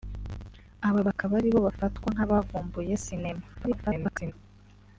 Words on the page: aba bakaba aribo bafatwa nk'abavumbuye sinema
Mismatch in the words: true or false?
true